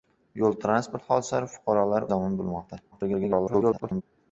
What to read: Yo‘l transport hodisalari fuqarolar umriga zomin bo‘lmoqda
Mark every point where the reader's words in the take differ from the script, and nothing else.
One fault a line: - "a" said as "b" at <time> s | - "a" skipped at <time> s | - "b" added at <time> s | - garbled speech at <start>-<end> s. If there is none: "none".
- "umriga" skipped at 2.1 s
- garbled speech at 2.9-4.0 s